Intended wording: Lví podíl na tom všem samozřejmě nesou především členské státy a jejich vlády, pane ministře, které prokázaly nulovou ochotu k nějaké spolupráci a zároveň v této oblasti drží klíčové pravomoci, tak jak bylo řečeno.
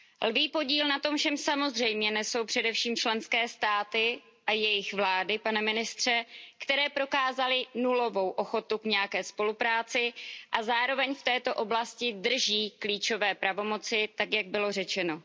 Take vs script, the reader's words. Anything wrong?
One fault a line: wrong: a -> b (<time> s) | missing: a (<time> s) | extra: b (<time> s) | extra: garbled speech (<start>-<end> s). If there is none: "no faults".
no faults